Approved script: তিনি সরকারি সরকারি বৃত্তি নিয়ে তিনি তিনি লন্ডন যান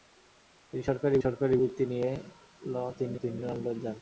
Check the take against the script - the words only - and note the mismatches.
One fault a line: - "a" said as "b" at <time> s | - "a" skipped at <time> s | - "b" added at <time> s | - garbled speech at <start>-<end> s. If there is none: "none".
none